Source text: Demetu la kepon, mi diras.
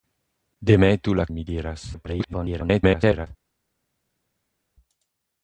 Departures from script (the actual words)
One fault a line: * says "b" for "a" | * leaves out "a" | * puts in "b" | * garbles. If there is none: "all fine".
* leaves out "kepon"
* garbles